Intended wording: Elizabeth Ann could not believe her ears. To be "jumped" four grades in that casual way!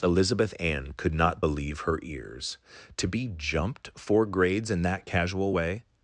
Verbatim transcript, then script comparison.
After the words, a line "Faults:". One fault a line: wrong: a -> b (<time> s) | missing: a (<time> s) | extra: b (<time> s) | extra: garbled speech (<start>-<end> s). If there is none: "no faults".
Elizabeth Ann could not believe her ears. To be "jumped" four grades in that casual way!
Faults:
no faults